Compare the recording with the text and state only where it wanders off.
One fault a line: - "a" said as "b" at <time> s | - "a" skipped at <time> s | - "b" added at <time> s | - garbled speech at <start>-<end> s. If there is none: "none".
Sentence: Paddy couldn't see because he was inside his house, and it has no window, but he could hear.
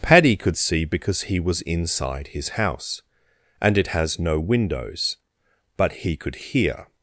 - "couldn't" said as "could" at 0.3 s
- "window" said as "windows" at 4.4 s